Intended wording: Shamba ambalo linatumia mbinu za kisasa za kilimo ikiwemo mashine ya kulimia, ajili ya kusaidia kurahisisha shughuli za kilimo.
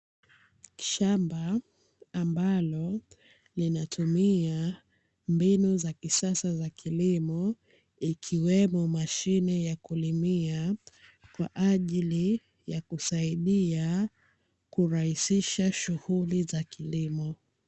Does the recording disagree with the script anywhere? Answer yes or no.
yes